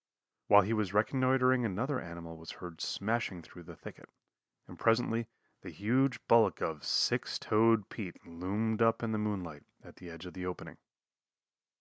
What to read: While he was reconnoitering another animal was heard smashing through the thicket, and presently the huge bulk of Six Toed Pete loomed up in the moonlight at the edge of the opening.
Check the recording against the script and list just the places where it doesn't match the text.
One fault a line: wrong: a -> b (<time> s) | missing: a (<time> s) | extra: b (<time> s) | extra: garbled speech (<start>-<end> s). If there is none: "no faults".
no faults